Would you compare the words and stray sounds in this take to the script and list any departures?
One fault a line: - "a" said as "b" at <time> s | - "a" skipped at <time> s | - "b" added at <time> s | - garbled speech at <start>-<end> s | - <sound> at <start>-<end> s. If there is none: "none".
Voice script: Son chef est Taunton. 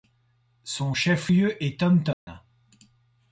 - "lieu" added at 1.3 s
- dropout at 2.1-2.3 s